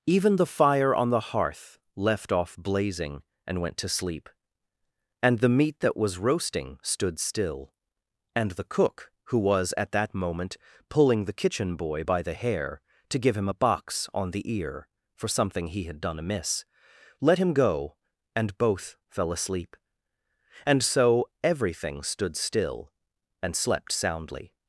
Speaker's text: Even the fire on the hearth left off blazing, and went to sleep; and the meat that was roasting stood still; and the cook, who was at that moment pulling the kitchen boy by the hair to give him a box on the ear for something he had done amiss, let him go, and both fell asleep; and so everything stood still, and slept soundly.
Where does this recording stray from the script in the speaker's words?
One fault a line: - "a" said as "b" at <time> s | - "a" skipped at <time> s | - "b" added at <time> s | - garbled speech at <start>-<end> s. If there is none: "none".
none